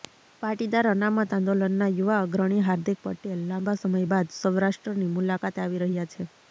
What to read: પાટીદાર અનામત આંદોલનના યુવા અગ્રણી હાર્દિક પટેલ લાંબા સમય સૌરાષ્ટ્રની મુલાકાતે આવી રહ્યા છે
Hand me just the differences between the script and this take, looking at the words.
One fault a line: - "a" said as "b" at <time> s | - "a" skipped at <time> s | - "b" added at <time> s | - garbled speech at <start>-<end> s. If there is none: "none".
- "બાદ" added at 4.1 s